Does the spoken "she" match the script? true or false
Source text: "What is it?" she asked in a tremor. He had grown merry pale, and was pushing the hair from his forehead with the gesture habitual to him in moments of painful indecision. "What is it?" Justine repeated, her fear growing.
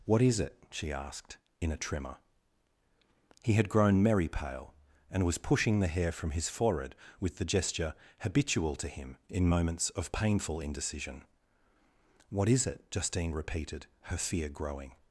true